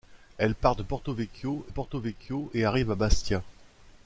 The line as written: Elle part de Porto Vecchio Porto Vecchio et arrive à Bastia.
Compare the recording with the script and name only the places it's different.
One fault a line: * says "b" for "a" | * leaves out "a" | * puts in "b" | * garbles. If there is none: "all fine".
all fine